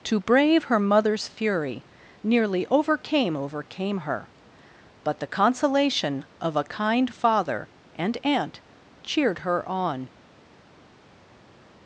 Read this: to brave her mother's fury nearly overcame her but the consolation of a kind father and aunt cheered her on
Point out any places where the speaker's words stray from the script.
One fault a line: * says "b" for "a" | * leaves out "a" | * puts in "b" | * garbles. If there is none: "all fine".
* puts in "overcame"